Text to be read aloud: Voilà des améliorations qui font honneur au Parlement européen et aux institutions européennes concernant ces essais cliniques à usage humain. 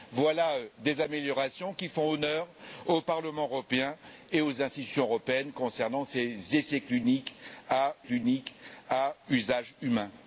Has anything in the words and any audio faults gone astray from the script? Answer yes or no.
yes